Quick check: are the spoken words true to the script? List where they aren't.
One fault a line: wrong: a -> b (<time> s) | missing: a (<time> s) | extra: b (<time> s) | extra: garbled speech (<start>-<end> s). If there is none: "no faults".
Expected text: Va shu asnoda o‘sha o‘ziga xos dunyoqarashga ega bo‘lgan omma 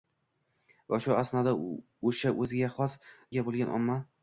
missing: dunyoqarashga (3.0 s)